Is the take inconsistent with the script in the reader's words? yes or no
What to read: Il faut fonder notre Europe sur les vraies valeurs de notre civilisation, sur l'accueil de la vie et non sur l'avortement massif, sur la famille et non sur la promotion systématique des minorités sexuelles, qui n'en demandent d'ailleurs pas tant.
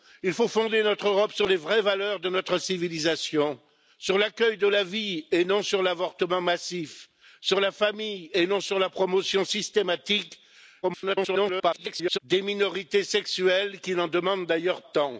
yes